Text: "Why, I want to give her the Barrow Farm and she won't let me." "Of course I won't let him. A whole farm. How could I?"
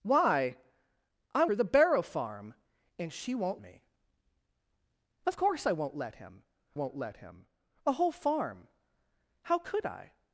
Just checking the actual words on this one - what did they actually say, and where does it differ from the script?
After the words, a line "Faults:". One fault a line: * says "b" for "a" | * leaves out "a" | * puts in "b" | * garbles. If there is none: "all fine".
"Why, I her the Barrow Farm and she won't me." "Of course I won't let him won't let him. A whole farm. How could I?"
Faults:
* leaves out "want to give"
* leaves out "let"
* puts in "won't let him"